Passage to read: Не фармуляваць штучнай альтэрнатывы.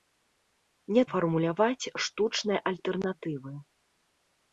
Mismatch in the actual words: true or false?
false